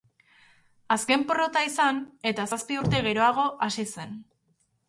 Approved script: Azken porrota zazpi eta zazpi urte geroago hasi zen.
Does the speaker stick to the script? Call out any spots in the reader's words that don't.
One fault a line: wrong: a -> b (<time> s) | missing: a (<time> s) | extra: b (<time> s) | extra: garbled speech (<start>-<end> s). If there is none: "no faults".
wrong: zazpi -> izan (1.7 s)